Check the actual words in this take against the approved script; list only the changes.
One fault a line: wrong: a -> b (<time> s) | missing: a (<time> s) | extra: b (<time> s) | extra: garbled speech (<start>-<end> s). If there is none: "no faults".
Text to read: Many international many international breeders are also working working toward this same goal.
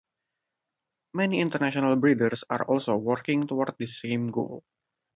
missing: many international (1.9 s)
missing: working (3.4 s)